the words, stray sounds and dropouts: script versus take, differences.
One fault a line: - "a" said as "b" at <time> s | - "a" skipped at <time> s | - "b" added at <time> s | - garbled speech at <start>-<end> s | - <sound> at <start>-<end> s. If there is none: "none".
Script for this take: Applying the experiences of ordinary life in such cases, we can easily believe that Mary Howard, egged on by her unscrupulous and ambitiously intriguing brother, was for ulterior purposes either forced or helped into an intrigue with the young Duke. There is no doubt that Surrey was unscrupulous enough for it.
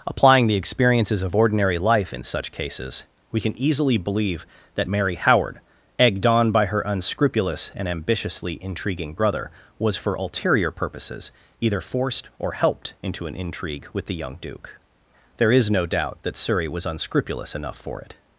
none